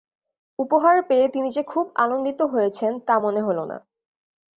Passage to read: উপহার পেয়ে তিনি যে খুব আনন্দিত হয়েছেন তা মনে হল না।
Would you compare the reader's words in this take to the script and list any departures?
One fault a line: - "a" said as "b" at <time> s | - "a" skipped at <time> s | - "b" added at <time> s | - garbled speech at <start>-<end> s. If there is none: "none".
none